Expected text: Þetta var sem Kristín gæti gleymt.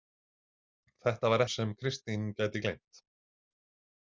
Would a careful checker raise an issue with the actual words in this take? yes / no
no